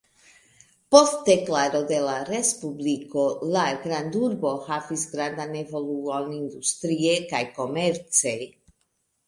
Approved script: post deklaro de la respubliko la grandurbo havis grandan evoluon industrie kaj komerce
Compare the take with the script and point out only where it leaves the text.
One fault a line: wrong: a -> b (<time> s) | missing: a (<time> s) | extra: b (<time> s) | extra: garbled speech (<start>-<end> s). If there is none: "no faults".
no faults